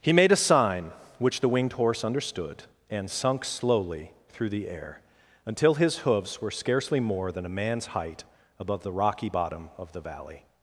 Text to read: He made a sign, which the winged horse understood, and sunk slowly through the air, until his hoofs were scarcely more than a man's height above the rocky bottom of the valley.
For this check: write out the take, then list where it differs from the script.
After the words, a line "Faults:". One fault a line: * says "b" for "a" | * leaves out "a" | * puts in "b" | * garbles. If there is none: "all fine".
He made a sign, which the winged horse understood, and sunk slowly through the air, until his hoofs were scarcely more than a man's height above the rocky bottom of the valley.
Faults:
all fine